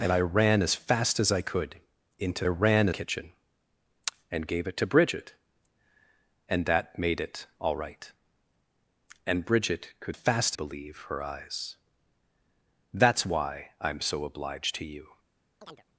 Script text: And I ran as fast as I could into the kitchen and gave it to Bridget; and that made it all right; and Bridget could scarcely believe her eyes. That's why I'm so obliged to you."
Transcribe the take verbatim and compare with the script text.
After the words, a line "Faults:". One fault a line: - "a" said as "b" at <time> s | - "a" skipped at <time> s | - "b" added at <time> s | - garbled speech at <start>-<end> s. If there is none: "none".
And I ran as fast as I could into ran kitchen and gave it to Bridget; and that made it all right; and Bridget could fast believe her eyes. That's why I'm so obliged to you."
Faults:
- "the" said as "ran" at 2.5 s
- "scarcely" said as "fast" at 10.1 s